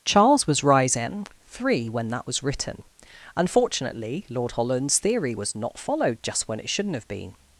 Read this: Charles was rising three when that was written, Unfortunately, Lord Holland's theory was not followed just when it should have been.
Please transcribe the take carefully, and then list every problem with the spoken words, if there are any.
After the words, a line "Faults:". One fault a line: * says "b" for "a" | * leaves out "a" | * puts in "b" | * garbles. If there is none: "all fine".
Charles was rising three when that was written, Unfortunately, Lord Holland's theory was not followed just when it shouldn't have been.
Faults:
* says "shouldn't" for "should"